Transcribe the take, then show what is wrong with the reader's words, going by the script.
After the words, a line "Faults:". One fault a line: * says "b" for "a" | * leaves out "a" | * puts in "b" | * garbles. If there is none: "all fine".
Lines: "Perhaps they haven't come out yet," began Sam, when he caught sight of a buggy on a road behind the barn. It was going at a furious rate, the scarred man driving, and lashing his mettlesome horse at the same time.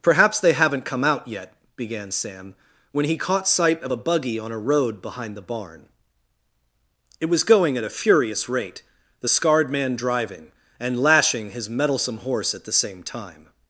"Perhaps they haven't come out yet," began Sam, when he caught sight of a buggy on a road behind the barn. It was going at a furious rate, the scarred man driving, and lashing his mettlesome horse at the same time.
Faults:
all fine